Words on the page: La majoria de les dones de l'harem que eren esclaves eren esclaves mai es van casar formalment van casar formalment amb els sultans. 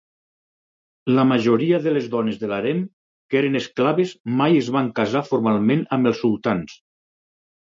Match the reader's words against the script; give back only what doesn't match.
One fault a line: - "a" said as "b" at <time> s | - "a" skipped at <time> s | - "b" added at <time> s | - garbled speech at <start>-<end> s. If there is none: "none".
- "eren esclaves" skipped at 4.1 s
- "van casar formalment" skipped at 5.9 s